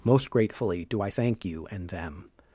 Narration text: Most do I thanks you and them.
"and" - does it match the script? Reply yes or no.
yes